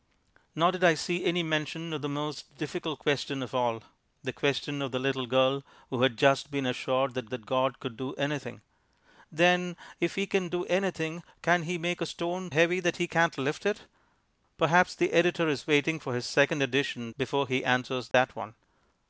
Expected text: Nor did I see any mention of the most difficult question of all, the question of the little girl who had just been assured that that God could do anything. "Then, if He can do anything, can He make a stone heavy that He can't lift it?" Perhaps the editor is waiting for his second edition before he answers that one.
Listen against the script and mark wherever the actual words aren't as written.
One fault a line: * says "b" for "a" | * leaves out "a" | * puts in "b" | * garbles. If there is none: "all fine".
all fine